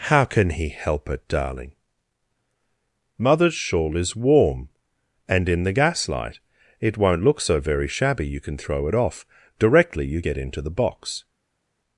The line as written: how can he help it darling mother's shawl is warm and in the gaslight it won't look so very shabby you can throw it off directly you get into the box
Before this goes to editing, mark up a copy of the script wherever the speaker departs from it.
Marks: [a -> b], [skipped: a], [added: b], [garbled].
how can he help it darling mother's shawl is warm and in the gaslight it won't look so very shabby you can throw it off directly you get into the box